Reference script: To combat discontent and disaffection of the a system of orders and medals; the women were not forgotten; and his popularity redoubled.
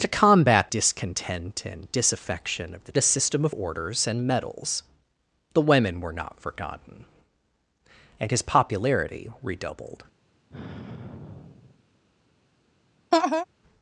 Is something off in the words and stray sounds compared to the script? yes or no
yes